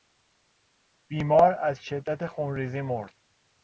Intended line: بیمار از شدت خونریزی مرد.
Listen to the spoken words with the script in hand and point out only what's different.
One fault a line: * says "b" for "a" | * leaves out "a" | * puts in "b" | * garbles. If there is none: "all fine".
all fine